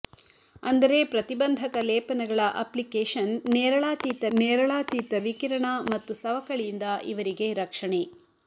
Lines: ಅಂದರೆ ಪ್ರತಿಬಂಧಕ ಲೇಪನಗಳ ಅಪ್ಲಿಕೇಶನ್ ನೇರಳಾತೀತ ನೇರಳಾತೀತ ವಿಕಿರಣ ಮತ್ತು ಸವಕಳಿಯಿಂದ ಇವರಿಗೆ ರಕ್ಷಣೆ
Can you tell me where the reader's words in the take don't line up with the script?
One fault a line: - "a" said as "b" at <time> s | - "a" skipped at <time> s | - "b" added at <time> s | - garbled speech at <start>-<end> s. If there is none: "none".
none